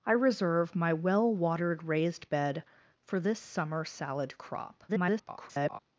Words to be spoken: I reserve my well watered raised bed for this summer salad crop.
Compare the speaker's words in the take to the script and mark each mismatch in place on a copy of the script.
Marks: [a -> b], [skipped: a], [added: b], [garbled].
I reserve my well watered raised bed for this summer salad crop. [garbled]